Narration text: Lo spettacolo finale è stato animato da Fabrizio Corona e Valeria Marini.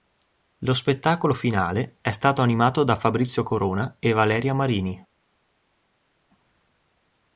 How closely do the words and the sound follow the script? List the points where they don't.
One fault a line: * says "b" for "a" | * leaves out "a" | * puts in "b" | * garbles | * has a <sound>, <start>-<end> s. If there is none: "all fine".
all fine